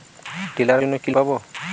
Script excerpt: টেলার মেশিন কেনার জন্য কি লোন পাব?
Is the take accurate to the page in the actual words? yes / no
no